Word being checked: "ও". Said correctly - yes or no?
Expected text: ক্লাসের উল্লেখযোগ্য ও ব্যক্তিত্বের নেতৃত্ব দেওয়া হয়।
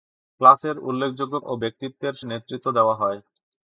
yes